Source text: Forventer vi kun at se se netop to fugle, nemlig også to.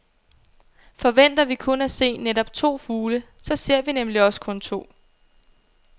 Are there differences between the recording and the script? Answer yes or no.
yes